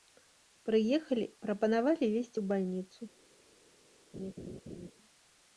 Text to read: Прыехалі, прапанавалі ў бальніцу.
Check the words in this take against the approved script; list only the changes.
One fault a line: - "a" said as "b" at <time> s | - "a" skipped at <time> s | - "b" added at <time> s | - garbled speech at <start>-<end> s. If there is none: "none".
- "везці" added at 2.2 s